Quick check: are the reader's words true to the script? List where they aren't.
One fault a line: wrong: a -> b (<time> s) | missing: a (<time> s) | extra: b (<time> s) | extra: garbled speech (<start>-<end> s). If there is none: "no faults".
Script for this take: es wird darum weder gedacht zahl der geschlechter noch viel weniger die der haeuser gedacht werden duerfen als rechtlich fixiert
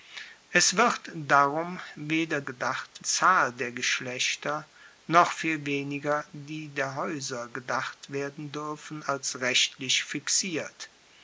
no faults